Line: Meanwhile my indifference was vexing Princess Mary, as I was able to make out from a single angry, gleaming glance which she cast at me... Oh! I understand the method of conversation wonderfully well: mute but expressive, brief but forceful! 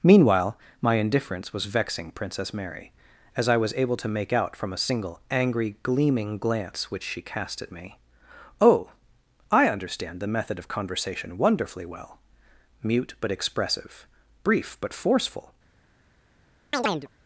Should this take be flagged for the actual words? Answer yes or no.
no